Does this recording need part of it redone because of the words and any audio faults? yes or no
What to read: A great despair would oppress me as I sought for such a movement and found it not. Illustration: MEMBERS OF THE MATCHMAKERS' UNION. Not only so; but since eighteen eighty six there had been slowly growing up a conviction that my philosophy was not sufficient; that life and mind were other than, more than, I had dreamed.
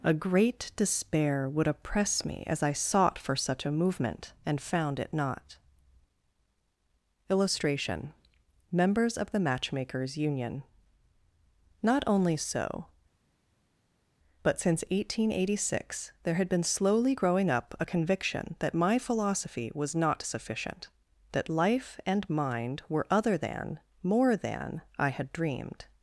no